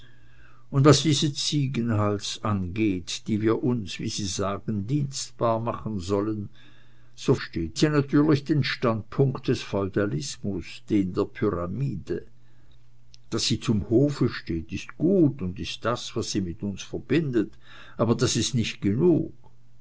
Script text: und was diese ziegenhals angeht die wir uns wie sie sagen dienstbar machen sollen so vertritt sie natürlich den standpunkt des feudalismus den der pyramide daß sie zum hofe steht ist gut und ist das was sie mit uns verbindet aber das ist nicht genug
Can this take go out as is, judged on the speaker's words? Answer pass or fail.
fail